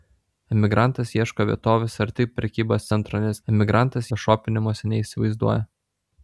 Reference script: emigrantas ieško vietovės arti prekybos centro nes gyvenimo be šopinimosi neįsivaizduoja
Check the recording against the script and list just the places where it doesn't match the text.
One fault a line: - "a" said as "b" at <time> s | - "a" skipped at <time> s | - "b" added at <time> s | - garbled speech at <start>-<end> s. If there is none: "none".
- "gyvenimo" said as "emigrantas" at 3.5 s